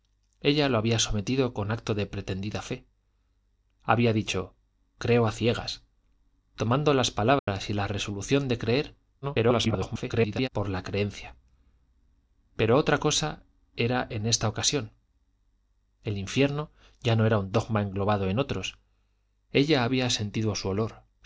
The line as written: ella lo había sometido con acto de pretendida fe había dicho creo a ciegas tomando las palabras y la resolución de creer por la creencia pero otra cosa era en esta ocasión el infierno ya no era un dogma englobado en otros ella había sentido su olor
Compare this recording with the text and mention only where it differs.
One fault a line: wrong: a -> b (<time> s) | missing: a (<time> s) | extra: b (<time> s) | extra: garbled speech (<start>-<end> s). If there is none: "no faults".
extra: garbled speech (9.2-10.5 s)